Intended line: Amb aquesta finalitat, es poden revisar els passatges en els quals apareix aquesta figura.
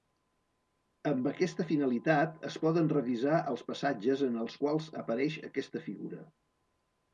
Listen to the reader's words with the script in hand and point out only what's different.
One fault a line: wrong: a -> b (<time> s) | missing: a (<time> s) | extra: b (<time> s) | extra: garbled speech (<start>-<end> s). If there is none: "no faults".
no faults